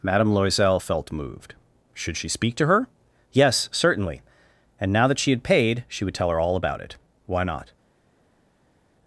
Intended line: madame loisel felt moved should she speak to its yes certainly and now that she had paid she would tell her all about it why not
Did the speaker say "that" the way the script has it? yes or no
yes